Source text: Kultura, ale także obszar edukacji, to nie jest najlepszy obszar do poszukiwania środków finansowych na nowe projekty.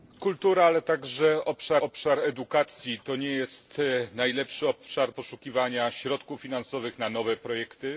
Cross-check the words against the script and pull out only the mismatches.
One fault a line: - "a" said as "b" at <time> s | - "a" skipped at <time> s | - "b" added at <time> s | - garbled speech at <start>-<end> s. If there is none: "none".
- "obszar" added at 1.8 s
- "do" skipped at 5.1 s